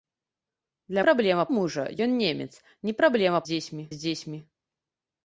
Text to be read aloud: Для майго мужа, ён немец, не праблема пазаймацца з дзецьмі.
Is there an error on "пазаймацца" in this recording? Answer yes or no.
yes